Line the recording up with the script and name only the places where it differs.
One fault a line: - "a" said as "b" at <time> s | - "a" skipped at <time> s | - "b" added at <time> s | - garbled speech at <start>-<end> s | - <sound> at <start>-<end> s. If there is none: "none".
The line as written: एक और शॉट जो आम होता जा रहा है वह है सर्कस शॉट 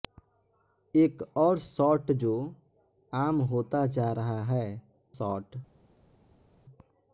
- "वह है सर्कस" skipped at 4.7 s